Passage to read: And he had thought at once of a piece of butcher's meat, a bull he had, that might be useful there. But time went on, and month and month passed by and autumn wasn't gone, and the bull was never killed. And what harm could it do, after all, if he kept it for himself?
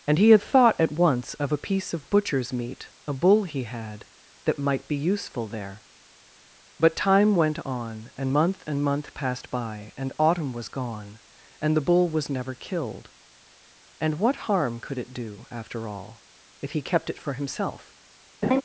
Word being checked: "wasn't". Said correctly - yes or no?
no